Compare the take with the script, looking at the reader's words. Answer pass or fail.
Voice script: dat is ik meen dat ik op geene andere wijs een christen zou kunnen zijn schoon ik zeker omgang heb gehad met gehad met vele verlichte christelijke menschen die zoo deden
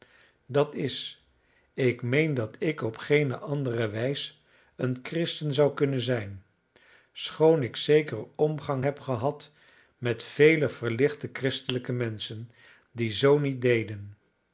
fail